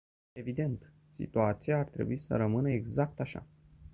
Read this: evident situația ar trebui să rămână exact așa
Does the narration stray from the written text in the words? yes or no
no